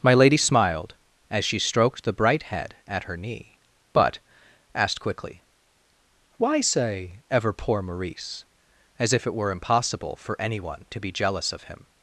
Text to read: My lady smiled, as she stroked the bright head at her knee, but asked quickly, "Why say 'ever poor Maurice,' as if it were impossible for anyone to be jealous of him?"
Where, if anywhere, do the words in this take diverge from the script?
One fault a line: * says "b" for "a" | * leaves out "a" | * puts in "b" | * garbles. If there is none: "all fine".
all fine